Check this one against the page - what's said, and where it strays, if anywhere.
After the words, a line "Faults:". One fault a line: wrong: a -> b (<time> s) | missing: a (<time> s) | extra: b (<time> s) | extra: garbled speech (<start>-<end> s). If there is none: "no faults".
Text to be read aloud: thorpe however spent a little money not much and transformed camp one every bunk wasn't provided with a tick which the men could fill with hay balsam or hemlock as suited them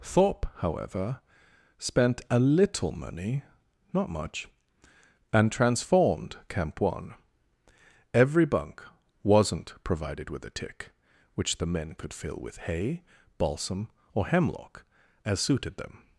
thorpe however spent a little money not much and transformed camp one every bunk wasn't provided with a tick which the men could fill with hay balsam or hemlock as suited them
Faults:
no faults